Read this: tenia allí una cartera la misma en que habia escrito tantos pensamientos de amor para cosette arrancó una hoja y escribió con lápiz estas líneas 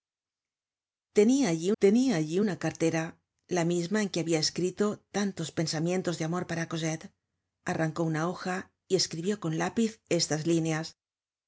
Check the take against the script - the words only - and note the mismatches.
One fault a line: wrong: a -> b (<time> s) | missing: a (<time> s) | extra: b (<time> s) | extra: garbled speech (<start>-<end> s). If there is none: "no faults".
extra: tenia allí (1.8 s)